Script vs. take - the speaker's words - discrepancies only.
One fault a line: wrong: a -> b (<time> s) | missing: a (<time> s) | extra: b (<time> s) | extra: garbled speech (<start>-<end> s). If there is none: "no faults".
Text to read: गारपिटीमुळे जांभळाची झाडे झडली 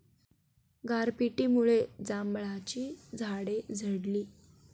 no faults